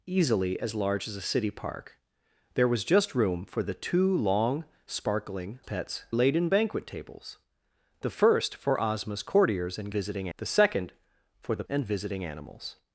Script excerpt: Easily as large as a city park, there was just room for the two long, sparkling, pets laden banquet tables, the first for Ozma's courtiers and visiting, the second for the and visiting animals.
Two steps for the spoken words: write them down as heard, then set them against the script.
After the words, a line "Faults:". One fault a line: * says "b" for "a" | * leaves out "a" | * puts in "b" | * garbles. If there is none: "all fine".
Easily as large as a city park, there was just room for the two long, sparkling, pets laden banquet tables, the first for Ozma's courtiers and visiting, the second for the and visiting animals.
Faults:
all fine